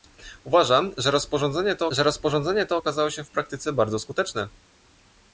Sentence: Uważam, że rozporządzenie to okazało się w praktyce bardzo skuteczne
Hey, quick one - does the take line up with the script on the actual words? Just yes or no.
no